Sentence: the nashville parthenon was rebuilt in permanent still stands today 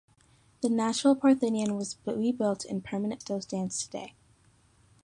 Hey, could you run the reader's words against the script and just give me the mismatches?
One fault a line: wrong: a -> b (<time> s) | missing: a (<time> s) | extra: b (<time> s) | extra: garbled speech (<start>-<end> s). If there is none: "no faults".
no faults